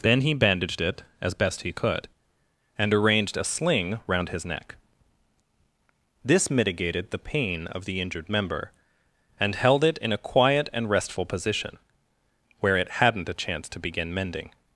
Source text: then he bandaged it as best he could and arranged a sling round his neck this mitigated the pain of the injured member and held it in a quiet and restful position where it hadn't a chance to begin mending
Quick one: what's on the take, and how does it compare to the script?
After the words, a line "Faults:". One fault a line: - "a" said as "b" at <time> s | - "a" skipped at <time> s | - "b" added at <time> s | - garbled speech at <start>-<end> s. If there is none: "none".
then he bandaged it as best he could and arranged a sling round his neck this mitigated the pain of the injured member and held it in a quiet and restful position where it hadn't a chance to begin mending
Faults:
none